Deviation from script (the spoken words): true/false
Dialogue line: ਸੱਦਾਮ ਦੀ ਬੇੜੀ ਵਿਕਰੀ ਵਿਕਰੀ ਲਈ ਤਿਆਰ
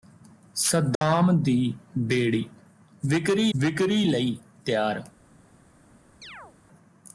false